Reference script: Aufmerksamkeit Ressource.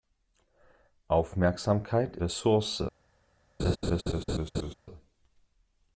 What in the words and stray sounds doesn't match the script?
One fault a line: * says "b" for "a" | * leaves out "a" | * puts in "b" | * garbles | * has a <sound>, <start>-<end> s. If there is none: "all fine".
* has a laugh, 3.6-4.7 s